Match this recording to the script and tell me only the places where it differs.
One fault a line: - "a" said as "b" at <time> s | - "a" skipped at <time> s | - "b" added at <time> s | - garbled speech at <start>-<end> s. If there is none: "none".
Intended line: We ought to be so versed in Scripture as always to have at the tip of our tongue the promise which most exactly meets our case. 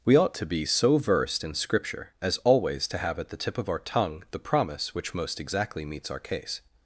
none